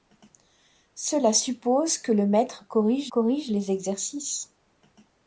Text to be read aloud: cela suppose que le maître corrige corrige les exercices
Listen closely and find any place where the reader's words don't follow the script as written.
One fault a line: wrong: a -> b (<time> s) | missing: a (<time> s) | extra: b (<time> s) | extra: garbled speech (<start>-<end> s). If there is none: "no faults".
no faults